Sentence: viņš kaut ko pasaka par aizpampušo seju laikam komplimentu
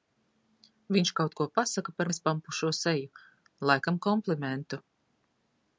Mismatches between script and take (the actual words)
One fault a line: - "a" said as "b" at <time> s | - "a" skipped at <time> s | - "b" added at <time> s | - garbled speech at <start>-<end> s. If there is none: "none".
none